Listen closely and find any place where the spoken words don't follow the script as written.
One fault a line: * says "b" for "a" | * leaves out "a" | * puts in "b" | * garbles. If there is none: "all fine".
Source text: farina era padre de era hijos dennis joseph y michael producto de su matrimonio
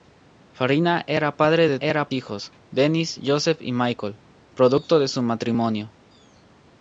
all fine